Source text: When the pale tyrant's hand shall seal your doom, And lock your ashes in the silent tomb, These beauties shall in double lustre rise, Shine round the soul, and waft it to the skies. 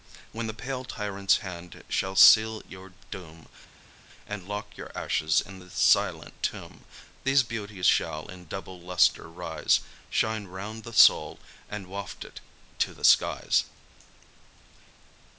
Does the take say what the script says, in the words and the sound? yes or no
yes